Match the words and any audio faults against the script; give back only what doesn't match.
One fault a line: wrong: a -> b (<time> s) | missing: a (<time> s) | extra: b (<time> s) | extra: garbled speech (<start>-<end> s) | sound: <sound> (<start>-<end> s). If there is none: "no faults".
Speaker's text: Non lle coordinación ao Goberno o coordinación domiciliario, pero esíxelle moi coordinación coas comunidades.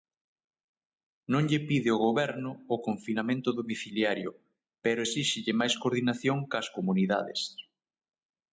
wrong: coordinación -> pide (1.7 s)
wrong: coordinación -> confinamento (2.9 s)
wrong: moi -> máis (5.6 s)